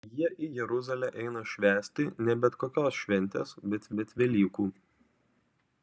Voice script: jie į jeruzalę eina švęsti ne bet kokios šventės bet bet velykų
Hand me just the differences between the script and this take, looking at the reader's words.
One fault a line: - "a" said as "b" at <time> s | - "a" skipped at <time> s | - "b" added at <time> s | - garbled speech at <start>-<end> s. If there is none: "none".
none